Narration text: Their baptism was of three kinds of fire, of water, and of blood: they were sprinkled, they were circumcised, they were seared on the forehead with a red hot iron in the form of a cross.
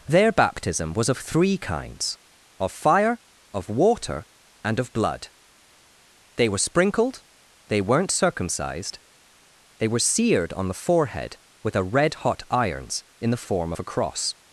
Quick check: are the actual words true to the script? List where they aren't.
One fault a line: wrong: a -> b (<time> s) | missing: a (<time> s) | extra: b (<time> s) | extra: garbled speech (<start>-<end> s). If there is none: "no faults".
wrong: were -> weren't (7.8 s)
wrong: iron -> irons (12.5 s)